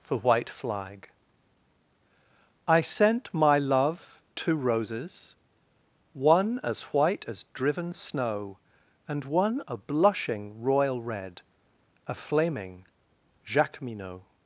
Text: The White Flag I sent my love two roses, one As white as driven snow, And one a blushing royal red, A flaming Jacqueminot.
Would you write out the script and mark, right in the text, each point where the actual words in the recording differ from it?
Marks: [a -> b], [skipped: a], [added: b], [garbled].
[The -> For] White Flag I sent my love two roses, one As white as driven snow, And one a blushing royal red, A flaming Jacqueminot.